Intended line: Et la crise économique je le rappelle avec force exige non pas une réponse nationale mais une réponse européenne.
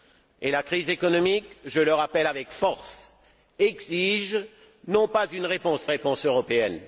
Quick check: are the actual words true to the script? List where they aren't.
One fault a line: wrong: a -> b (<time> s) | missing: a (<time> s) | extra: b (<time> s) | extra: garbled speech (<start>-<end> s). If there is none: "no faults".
missing: nationale mais une (5.9 s)